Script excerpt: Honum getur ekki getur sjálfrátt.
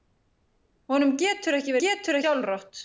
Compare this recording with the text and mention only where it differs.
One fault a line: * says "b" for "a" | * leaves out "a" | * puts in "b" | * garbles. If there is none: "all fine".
all fine